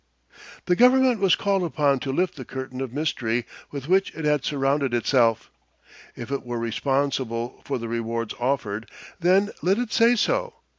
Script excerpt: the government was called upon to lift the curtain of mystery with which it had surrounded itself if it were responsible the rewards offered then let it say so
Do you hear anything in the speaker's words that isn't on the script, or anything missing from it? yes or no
yes